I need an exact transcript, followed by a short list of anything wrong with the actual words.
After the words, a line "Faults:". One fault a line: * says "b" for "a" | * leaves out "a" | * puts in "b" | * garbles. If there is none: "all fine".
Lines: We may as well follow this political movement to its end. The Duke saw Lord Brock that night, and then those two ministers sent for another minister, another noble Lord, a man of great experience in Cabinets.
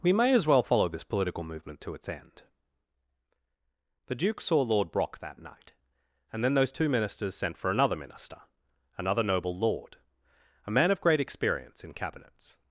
We may as well follow this political movement to its end. The Duke saw Lord Brock that night, and then those two ministers sent for another minister, another noble Lord, a man of great experience in Cabinets.
Faults:
all fine